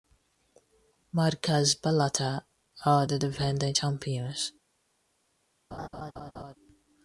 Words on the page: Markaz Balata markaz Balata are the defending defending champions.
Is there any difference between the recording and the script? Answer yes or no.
yes